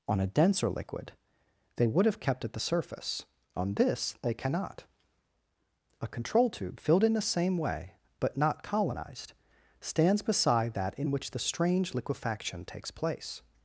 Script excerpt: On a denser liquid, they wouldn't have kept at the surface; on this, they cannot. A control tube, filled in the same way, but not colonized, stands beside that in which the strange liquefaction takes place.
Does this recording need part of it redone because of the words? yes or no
yes